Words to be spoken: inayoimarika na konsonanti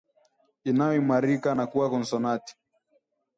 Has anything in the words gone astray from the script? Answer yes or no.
yes